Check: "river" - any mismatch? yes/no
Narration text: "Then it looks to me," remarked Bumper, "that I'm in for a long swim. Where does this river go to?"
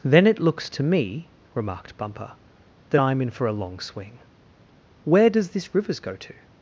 yes